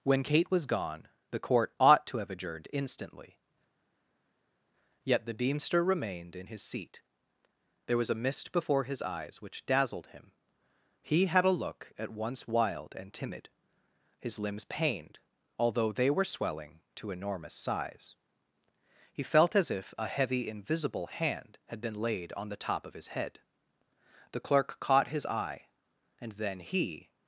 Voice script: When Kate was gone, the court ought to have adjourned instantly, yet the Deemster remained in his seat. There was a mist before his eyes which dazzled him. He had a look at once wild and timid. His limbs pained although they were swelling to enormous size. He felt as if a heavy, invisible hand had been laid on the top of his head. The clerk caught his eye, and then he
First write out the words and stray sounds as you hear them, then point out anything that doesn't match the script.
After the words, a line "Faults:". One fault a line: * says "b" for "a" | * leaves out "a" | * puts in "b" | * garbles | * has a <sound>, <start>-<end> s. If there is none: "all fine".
When Kate was gone, the court ought to have adjourned instantly, yet the Deemster remained in his seat. There was a mist before his eyes which dazzled him. He had a look at once wild and timid. His limbs pained although they were swelling to enormous size. He felt as if a heavy, invisible hand had been laid on the top of his head. The clerk caught his eye, and then he
Faults:
all fine